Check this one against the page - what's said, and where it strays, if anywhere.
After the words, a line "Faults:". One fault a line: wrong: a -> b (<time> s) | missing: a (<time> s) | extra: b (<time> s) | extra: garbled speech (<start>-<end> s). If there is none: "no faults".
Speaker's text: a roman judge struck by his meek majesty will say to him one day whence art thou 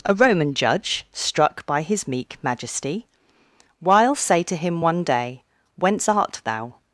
a roman judge struck by his meek majesty while say to him one day whence art thou
Faults:
wrong: will -> while (3.8 s)